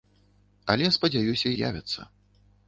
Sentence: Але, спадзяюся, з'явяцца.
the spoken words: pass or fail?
pass